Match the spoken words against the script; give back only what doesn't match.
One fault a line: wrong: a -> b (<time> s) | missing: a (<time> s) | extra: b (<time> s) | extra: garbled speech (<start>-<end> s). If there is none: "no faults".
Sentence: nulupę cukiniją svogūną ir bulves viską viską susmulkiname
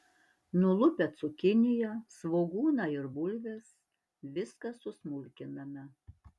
missing: viską (4.8 s)